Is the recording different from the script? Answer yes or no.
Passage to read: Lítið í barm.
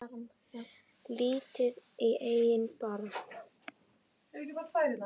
yes